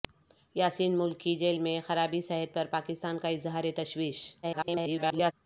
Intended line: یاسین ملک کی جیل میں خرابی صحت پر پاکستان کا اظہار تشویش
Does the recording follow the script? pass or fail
fail